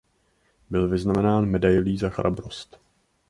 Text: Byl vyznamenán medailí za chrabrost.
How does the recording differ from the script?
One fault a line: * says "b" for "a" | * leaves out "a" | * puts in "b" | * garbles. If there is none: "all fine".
all fine